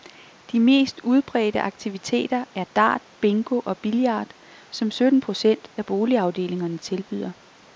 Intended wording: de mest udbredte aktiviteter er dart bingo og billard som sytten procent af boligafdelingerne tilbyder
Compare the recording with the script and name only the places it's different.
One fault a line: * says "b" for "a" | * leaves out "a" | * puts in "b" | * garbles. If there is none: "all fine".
all fine